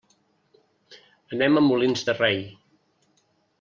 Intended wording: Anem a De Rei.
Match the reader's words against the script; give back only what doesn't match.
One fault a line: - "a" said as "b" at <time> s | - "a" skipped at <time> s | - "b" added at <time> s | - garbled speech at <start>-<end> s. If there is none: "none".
- "Molins" added at 1.7 s